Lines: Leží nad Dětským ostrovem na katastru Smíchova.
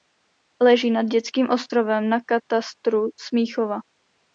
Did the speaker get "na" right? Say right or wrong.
right